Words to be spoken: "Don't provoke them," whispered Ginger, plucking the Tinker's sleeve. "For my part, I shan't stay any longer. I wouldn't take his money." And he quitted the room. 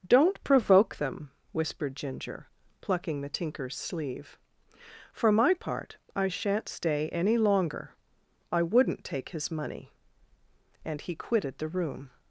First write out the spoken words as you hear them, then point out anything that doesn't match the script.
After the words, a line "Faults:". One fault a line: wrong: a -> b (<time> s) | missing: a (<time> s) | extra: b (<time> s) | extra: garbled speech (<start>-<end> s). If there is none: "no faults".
"Don't provoke them," whispered Ginger, plucking the Tinker's sleeve. "For my part, I shan't stay any longer. I wouldn't take his money." And he quitted the room.
Faults:
no faults